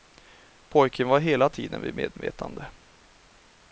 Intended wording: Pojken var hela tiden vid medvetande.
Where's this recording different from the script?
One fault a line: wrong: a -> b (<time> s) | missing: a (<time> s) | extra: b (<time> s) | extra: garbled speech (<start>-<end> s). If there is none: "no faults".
no faults